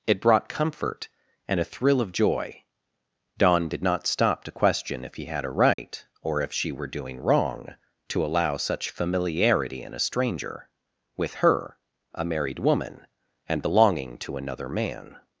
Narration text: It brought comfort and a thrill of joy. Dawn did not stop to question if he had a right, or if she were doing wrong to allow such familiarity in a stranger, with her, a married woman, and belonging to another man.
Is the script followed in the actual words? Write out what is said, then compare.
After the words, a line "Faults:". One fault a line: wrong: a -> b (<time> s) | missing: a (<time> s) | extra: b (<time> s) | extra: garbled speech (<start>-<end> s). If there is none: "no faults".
It brought comfort and a thrill of joy. Dawn did not stop to question if he had a right, or if she were doing wrong to allow such familiarity in a stranger, with her, a married woman, and belonging to another man.
Faults:
no faults